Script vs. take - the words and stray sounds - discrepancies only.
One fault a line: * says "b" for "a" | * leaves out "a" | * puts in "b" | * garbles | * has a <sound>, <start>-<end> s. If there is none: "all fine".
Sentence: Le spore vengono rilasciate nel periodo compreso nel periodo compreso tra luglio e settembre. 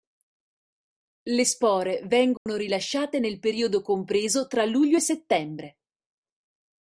* has a dropout, 2.4-2.5 s
* leaves out "nel periodo compreso"